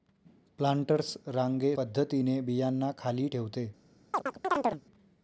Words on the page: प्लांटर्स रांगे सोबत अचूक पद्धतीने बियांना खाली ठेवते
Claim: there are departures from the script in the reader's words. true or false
true